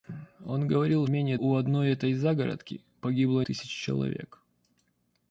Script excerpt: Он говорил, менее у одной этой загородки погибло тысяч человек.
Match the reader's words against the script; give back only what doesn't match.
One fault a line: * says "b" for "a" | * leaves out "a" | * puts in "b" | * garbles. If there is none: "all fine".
all fine